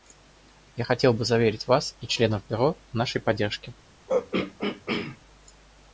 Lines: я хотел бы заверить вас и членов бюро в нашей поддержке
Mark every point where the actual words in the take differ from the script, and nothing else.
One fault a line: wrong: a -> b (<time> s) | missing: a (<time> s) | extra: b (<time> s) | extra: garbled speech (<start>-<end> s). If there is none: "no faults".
no faults